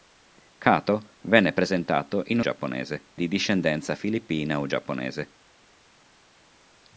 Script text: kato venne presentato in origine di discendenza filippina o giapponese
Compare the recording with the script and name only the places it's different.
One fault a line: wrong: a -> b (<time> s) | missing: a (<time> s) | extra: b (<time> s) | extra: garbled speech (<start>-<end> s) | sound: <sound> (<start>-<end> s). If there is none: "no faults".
wrong: origine -> giapponese (2.4 s)